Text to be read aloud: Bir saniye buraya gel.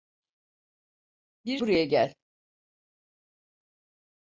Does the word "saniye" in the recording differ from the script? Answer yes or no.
yes